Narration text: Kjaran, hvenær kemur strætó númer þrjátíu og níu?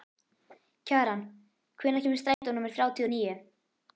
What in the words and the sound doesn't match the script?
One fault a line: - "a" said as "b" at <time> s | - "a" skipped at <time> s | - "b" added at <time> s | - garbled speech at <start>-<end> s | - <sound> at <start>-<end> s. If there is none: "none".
- dropout at 2.3-2.4 s